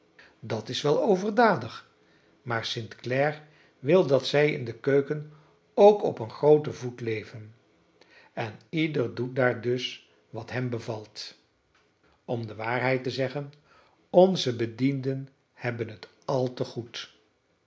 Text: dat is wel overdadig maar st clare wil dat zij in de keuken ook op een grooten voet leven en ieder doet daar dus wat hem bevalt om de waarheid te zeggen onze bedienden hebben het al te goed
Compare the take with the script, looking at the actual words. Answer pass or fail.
pass